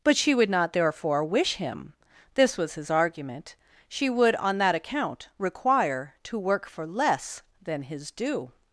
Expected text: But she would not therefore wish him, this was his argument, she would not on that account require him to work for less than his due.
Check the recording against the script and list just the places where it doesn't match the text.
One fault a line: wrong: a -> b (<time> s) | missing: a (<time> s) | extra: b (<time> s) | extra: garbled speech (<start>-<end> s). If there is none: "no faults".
missing: not (4.3 s)
missing: him (6.2 s)